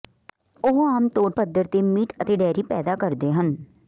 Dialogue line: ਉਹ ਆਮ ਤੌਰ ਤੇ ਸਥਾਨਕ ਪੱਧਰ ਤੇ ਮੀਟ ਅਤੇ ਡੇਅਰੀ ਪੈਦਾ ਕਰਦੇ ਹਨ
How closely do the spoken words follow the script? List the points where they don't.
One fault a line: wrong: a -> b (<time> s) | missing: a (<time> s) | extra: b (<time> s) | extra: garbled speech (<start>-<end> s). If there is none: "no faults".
missing: ਤੇ ਸਥਾਨਕ (1.3 s)